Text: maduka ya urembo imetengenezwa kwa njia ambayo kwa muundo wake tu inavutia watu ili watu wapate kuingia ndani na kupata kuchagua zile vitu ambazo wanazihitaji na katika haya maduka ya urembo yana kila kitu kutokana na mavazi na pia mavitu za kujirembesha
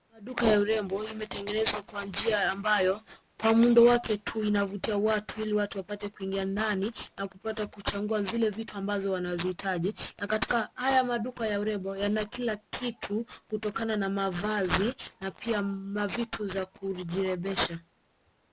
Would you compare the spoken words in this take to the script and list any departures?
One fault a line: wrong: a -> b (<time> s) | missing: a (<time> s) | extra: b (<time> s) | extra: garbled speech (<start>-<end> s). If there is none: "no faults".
no faults